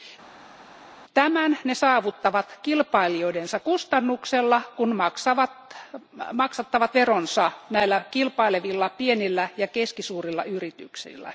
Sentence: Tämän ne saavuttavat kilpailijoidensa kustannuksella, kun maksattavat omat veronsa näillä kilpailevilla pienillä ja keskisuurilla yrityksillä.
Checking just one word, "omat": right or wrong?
wrong